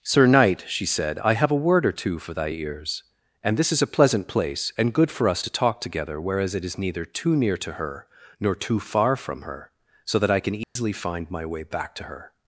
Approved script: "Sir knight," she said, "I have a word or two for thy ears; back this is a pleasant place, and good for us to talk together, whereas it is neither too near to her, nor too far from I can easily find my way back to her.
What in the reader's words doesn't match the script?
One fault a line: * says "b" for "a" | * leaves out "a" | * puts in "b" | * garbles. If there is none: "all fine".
* says "and" for "back"
* puts in "her so that"